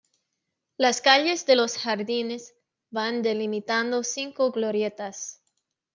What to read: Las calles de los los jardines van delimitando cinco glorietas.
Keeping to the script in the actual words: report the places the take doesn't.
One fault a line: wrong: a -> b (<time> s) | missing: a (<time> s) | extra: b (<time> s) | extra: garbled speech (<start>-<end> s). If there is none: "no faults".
missing: los (1.8 s)